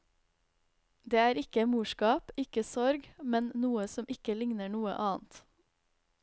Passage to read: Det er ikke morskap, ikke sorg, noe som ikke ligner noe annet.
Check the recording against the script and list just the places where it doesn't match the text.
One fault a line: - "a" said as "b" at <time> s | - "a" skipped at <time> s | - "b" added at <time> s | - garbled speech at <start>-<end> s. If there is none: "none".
- "men" added at 3.4 s